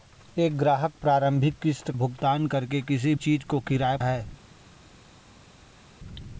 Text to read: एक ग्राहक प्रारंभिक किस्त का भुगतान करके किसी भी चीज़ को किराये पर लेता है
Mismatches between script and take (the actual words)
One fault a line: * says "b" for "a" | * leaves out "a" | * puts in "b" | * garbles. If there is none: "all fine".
* leaves out "का"
* leaves out "भी"
* leaves out "पर लेता"